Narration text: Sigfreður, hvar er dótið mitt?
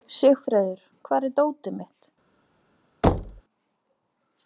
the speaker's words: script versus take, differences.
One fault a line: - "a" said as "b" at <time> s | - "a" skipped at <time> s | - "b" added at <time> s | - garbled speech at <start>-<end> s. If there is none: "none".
none